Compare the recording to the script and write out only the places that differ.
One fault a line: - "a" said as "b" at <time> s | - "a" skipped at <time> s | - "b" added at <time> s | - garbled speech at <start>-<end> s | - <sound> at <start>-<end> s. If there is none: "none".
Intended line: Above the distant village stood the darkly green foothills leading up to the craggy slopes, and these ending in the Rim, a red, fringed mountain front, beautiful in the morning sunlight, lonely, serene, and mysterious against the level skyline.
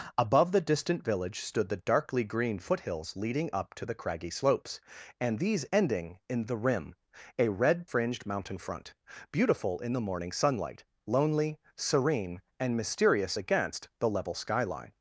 none